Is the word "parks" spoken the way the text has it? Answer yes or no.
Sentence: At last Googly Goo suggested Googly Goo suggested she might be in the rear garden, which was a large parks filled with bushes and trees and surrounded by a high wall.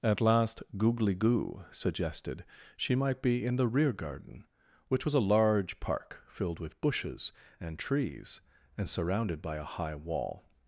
no